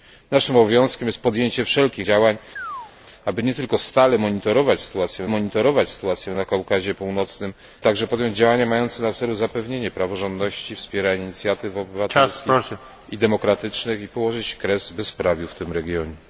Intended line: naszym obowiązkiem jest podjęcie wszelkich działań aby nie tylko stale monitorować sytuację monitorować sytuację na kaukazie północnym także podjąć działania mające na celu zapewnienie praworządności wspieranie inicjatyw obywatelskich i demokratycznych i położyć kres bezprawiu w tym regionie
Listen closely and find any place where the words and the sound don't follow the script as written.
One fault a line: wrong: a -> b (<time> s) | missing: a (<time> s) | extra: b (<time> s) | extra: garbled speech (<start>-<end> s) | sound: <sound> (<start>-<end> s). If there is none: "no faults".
sound: chirp (2.6-2.9 s)